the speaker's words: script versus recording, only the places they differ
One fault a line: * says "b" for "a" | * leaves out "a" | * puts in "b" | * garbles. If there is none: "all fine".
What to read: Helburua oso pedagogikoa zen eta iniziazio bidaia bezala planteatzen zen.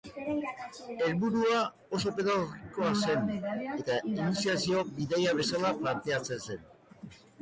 all fine